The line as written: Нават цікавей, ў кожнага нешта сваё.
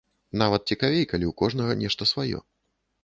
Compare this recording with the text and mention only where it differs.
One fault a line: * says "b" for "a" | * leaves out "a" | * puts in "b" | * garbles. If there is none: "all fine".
* puts in "калі"